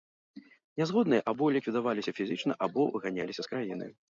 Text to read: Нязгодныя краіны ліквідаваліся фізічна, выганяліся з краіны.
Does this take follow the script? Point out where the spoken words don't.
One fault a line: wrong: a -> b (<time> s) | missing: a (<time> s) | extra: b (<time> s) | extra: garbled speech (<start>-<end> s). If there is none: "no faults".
wrong: краіны -> або (1.3 s)
extra: або (2.7 s)